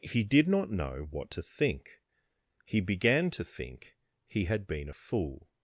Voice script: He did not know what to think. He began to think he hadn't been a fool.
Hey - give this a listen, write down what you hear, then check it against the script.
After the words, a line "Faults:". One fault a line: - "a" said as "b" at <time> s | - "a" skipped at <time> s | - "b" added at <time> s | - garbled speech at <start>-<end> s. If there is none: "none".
He did not know what to think. He began to think he had been a fool.
Faults:
- "hadn't" said as "had" at 4.4 s